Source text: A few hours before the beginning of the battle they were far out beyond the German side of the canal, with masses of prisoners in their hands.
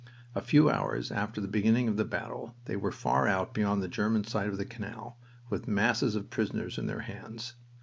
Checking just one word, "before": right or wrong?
wrong